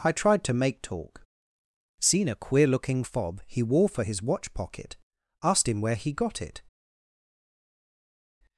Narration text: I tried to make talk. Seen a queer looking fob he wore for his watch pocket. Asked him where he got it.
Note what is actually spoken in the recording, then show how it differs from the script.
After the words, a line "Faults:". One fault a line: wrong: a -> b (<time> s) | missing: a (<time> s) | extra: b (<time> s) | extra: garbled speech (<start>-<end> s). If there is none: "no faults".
I tried to make talk. Seen a queer looking fob he wore for his watch pocket. Asked him where he got it.
Faults:
no faults